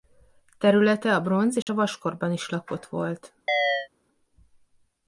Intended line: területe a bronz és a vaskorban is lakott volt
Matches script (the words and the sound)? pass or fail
fail